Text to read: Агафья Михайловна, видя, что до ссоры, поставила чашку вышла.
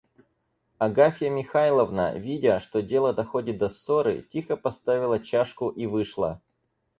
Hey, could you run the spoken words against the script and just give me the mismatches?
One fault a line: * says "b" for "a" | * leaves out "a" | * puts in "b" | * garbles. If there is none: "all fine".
* puts in "дело доходит"
* puts in "тихо"
* puts in "и"